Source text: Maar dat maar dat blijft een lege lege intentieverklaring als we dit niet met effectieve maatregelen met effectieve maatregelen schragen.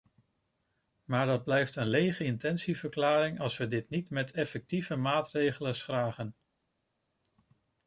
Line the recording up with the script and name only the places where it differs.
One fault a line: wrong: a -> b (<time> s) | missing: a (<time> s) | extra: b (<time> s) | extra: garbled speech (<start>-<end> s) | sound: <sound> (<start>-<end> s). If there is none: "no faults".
missing: maar dat (1.4 s)
missing: lege (2.2 s)
missing: met effectieve maatregelen (5.8 s)